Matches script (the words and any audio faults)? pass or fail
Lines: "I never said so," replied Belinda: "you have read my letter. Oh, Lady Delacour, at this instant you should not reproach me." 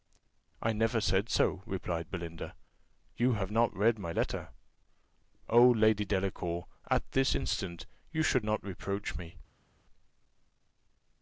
fail